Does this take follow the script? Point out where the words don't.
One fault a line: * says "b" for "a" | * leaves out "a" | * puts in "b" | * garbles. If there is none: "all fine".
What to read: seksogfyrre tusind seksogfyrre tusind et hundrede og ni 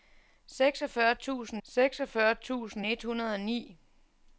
all fine